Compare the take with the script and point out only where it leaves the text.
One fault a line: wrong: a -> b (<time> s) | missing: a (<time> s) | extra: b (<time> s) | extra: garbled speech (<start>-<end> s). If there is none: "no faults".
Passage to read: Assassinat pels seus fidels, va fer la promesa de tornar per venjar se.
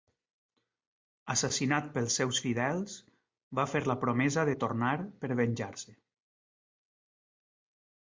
no faults